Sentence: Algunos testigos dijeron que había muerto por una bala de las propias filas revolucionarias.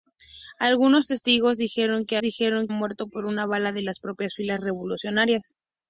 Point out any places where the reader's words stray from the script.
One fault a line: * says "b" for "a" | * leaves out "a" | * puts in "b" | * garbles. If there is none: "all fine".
* says "dijeron" for "había"